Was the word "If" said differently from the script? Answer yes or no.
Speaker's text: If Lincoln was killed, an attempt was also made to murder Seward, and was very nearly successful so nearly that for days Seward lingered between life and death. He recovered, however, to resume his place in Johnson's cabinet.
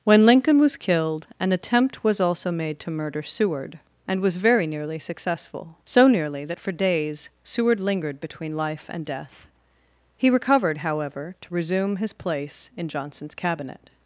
yes